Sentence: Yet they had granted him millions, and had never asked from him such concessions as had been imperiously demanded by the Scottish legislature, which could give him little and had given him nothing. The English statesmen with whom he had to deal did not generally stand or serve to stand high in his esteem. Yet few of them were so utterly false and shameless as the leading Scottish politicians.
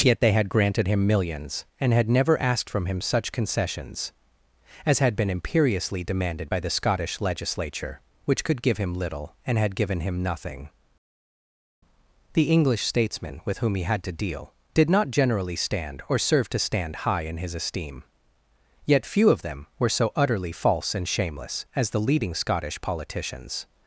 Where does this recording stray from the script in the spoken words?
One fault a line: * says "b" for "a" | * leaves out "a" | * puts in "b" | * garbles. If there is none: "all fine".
all fine